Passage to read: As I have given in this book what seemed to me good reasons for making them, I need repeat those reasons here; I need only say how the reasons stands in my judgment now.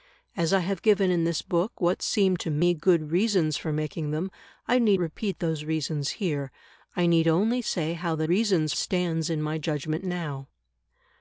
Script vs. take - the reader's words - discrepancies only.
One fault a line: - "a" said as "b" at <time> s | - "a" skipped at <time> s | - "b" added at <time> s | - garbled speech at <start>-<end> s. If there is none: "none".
none